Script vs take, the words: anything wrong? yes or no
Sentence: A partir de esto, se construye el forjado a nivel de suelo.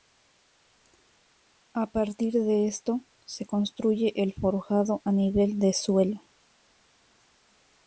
no